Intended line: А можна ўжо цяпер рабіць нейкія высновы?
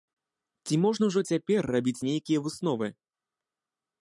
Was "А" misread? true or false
true